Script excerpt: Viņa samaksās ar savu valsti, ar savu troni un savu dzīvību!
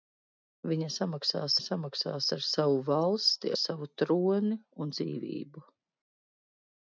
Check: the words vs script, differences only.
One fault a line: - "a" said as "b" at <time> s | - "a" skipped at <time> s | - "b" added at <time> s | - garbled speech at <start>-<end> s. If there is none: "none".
- "samaksās" added at 1.6 s
- "ar" skipped at 3.5 s
- "savu" skipped at 4.9 s